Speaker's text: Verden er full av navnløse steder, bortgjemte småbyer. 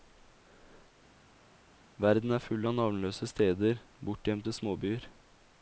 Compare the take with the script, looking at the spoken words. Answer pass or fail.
pass